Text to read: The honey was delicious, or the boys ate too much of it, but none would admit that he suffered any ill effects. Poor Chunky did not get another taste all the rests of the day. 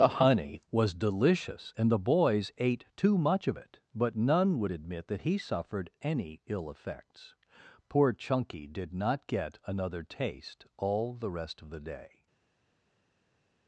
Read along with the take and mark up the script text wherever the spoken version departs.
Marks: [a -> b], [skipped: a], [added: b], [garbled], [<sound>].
The honey was delicious, [or -> and] the boys ate too much of it, but none would admit that he suffered any ill effects. Poor Chunky did not get another taste all the [rests -> rest] of the day.